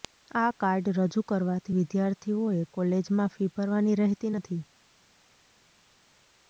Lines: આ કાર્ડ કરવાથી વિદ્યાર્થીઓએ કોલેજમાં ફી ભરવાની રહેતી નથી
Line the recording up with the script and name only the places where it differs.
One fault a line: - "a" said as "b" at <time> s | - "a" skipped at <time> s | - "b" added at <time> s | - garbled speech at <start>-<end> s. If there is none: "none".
- "રજૂ" added at 0.9 s